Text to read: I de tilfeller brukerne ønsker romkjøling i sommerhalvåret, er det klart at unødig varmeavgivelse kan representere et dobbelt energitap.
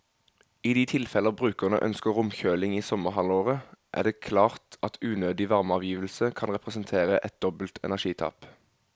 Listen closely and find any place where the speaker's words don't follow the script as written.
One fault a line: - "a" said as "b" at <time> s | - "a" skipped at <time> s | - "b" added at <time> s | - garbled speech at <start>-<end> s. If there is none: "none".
none